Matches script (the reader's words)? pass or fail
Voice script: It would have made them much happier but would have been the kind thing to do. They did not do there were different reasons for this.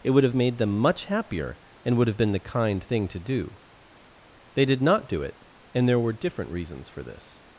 fail